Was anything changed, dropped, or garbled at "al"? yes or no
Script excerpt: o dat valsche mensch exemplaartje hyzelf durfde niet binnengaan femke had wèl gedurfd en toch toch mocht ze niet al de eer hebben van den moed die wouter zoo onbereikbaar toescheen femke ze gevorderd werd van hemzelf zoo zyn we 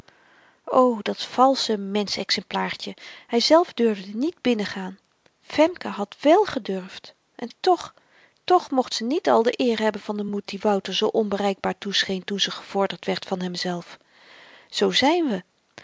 no